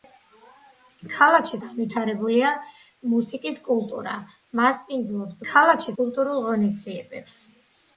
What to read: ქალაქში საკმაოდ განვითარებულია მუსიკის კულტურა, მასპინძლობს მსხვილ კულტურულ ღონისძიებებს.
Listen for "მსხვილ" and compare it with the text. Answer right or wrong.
wrong